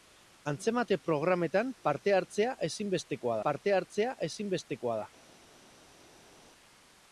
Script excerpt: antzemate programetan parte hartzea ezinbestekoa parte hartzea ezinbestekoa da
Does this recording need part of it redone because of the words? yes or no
no